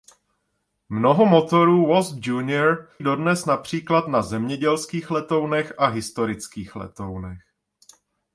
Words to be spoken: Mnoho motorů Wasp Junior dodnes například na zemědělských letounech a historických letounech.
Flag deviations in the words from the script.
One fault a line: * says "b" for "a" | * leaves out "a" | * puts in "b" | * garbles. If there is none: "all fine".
all fine